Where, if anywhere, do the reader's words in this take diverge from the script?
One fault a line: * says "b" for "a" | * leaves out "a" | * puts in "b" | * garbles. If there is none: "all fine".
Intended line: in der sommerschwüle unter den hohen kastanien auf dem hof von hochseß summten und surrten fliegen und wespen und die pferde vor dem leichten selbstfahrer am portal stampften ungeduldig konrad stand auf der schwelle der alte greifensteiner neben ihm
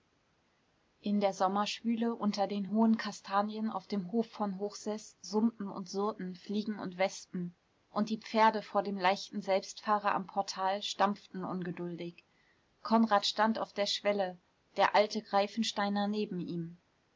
all fine